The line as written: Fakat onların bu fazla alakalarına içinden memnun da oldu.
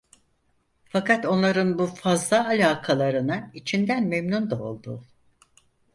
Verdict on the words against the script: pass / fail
pass